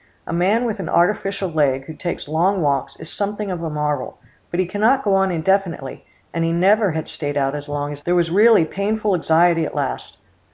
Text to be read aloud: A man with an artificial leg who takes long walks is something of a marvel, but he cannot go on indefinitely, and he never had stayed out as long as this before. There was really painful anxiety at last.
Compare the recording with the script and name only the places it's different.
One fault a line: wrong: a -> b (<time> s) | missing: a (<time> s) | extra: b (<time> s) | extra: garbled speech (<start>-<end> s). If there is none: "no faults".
missing: this before (8.0 s)